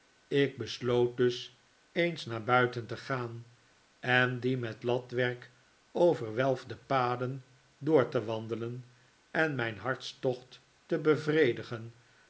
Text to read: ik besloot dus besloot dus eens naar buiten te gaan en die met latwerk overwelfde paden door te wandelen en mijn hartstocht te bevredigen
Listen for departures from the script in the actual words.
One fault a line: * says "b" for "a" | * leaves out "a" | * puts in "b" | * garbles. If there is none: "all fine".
* leaves out "besloot dus"